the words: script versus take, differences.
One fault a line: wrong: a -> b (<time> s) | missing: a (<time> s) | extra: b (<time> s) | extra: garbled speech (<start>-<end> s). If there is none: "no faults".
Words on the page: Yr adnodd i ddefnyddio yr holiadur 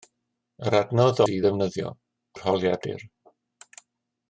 no faults